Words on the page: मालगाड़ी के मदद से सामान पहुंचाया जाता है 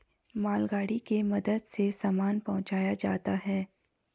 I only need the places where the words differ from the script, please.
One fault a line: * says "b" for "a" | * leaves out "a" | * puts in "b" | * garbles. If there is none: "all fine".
all fine